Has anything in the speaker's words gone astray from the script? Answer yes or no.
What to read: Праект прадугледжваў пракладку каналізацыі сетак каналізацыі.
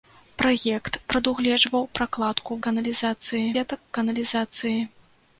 no